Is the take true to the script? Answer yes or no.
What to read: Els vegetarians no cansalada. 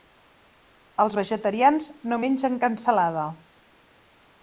no